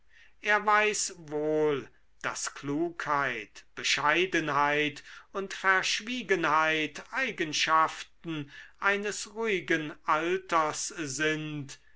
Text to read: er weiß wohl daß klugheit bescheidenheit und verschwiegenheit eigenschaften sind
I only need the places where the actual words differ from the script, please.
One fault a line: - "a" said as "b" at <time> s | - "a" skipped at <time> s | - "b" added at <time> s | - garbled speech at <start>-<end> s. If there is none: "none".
- "eines ruhigen alters" added at 8.8 s